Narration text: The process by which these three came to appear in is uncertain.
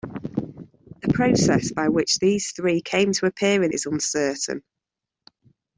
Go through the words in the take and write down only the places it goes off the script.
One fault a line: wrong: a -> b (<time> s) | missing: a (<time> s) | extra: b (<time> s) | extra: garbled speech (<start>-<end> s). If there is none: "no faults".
no faults